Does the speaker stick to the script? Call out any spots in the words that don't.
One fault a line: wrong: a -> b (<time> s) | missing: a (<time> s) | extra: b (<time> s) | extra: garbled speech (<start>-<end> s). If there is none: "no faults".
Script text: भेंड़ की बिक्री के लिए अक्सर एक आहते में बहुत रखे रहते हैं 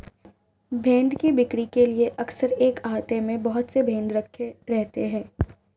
extra: से भेंड़ (3.7 s)